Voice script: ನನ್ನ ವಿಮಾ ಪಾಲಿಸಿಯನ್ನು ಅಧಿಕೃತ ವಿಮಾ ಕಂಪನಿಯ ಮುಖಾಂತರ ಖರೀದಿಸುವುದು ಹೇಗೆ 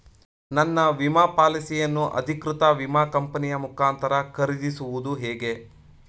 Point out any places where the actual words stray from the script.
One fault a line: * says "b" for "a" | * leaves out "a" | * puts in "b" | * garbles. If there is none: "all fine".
all fine